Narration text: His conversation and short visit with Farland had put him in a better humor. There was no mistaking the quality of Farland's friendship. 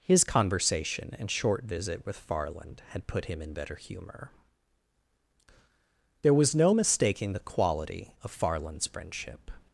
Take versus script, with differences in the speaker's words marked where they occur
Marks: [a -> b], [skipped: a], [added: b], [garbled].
His conversation and short visit with Farland had put him in [skipped: a] better humor. There was no mistaking the quality of Farland's friendship.